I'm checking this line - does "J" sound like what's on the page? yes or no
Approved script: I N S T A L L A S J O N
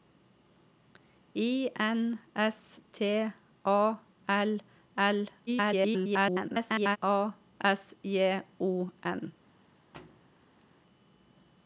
yes